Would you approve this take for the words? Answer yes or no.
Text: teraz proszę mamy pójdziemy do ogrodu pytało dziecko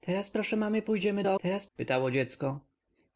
no